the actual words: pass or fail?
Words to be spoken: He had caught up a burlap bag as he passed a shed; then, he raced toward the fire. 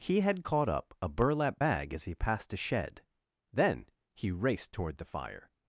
pass